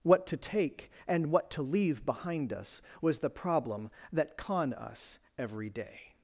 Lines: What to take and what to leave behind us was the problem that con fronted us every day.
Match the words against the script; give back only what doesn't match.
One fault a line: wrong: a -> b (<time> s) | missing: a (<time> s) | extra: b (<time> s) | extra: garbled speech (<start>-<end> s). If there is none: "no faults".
missing: fronted (4.7 s)